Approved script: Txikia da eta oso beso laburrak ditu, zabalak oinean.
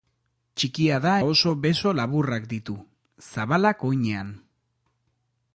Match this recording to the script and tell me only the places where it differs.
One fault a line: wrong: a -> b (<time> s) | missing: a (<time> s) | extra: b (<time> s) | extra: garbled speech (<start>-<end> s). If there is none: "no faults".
missing: eta (1.1 s)